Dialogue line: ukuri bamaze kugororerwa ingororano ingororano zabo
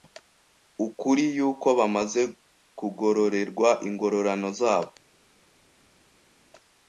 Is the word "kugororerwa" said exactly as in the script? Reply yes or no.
yes